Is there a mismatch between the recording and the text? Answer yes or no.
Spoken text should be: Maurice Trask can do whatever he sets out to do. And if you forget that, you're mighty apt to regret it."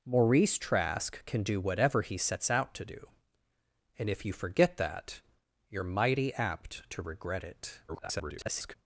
yes